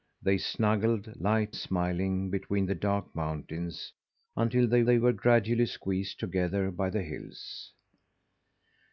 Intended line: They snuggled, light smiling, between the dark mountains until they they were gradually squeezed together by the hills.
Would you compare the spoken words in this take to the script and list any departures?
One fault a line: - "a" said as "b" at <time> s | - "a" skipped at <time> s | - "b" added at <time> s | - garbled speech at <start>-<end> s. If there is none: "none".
none